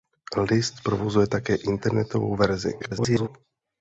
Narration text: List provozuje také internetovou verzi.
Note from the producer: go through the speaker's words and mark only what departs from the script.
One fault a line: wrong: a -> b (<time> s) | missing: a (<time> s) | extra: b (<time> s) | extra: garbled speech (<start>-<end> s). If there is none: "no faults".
extra: garbled speech (2.8-3.3 s)